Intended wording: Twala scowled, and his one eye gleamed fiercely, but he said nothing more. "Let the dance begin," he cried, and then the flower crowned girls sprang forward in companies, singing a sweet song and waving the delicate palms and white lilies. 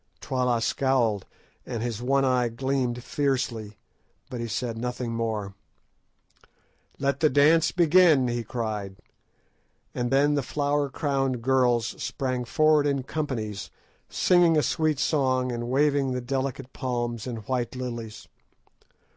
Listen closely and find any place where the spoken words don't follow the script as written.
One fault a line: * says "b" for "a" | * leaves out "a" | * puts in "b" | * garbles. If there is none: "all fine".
all fine